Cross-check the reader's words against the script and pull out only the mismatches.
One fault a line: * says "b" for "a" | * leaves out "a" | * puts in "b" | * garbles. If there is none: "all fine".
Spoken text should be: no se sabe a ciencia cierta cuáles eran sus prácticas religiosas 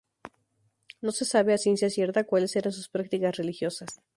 all fine